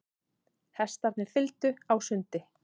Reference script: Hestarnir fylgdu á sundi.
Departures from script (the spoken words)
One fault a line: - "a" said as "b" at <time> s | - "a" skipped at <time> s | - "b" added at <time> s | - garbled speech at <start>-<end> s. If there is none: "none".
none